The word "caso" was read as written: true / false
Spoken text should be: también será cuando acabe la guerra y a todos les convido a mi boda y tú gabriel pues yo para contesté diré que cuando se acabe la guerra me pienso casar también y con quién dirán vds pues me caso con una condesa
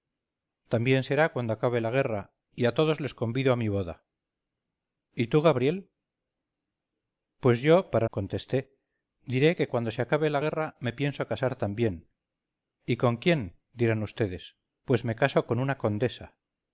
true